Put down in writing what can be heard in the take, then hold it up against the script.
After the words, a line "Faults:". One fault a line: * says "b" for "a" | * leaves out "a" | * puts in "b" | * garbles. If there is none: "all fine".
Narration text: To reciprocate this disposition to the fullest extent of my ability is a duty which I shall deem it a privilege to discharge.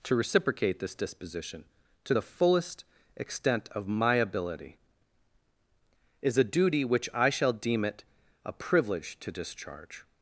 To reciprocate this disposition to the fullest extent of my ability is a duty which I shall deem it a privilege to discharge.
Faults:
all fine